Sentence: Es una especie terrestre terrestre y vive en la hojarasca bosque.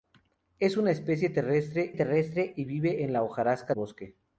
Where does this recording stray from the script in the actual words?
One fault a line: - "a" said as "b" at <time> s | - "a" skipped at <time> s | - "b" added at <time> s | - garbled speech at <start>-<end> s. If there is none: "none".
none